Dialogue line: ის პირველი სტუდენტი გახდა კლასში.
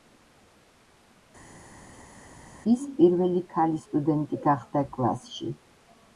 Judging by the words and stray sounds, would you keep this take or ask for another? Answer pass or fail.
fail